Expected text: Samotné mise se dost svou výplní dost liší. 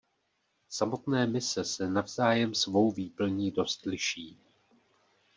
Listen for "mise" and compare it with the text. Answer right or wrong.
right